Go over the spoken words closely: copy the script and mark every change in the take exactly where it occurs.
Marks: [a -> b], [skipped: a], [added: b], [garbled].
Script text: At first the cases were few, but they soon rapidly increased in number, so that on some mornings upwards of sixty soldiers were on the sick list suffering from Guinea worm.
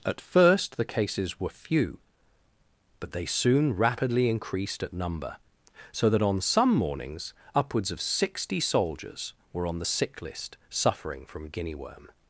At first the cases were few, but they soon rapidly increased [in -> at] number, so that on some mornings upwards of sixty soldiers were on the sick list suffering from Guinea worm.